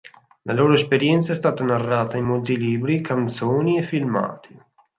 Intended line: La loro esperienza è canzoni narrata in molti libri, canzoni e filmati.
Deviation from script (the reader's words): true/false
true